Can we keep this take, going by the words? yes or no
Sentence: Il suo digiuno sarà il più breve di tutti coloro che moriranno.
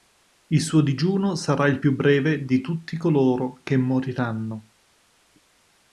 yes